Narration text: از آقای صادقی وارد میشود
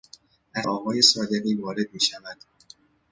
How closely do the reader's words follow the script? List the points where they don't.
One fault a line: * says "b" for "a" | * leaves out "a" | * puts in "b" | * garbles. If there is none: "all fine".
all fine